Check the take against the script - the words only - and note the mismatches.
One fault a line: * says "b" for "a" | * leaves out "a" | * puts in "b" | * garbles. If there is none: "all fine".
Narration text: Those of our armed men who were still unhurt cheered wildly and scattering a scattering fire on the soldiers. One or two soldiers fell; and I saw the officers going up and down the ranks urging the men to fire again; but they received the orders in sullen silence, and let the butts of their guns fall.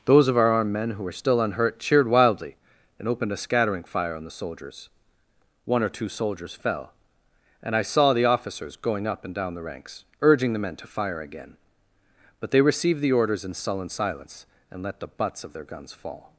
* says "opened" for "scattering"